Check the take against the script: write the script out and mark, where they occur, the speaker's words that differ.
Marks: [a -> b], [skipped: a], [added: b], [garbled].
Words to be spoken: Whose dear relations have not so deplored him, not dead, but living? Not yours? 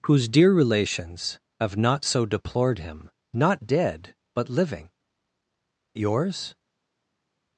Whose dear relations have not so deplored him, not dead, but living? [skipped: Not] yours?